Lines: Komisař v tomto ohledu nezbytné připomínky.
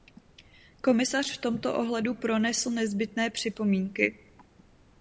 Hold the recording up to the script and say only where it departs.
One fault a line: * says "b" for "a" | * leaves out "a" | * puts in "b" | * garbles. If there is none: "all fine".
* puts in "pronesl"